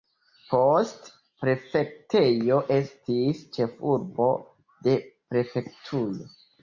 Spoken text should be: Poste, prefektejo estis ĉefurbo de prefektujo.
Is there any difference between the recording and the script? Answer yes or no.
no